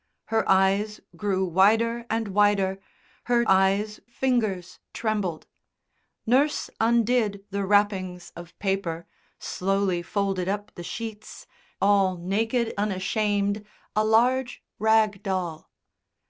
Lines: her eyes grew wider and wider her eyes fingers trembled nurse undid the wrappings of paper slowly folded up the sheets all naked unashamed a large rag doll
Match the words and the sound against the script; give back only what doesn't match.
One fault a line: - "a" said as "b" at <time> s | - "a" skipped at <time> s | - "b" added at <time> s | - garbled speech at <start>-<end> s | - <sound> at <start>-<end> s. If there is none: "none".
none